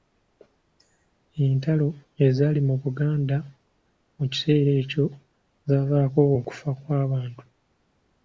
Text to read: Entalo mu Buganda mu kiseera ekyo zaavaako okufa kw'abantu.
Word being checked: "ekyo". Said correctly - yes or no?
yes